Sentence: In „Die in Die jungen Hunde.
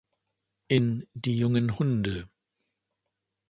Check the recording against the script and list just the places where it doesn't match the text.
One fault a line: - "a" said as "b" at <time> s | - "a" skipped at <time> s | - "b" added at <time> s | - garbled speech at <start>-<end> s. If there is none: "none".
- "in Die" skipped at 1.4 s